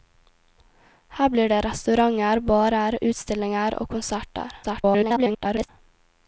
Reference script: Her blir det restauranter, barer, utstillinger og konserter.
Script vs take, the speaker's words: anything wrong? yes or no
yes